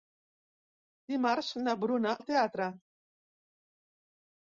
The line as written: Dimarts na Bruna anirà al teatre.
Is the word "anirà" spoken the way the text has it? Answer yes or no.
no